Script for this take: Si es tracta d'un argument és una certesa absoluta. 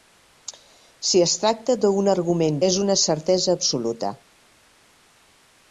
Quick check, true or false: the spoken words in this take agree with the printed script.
true